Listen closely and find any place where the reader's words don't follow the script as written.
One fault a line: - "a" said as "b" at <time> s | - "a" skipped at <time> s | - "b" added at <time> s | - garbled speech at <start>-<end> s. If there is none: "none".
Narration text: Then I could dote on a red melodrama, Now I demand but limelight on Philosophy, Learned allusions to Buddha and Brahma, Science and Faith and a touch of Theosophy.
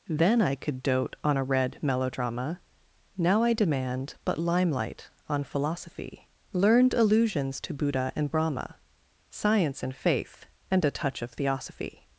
none